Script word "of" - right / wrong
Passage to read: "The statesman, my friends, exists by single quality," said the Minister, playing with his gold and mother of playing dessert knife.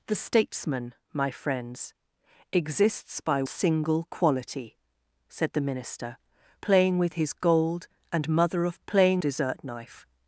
right